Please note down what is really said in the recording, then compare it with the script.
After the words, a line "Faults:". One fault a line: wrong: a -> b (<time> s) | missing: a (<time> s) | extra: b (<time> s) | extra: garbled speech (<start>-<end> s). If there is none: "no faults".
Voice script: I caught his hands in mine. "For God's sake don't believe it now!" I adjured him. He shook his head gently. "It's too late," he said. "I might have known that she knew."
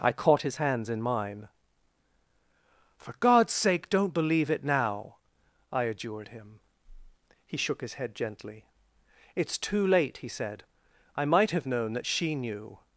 I caught his hands in mine. "For God's sake don't believe it now!" I adjured him. He shook his head gently. "It's too late," he said. "I might have known that she knew."
Faults:
no faults